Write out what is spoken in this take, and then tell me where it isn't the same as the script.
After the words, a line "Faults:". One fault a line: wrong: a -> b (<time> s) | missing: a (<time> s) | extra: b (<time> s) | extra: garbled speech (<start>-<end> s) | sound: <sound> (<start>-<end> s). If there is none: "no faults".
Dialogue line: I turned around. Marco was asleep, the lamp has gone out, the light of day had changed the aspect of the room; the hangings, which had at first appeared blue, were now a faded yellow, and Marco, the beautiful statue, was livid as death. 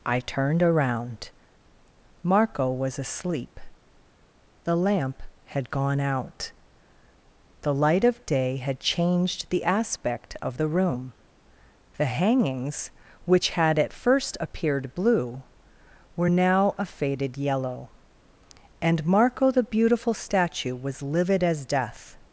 I turned around. Marco was asleep, the lamp had gone out, the light of day had changed the aspect of the room; the hangings, which had at first appeared blue, were now a faded yellow, and Marco, the beautiful statue, was livid as death.
Faults:
wrong: has -> had (5.5 s)